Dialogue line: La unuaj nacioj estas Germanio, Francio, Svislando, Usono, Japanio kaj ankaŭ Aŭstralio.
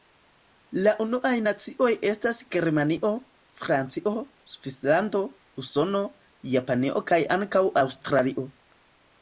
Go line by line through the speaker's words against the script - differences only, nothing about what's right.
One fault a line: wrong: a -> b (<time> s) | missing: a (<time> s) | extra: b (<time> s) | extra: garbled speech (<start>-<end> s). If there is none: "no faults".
no faults